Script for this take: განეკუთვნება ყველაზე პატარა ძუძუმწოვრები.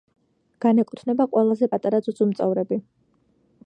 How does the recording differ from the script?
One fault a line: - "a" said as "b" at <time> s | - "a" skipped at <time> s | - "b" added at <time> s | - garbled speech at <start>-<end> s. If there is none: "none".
none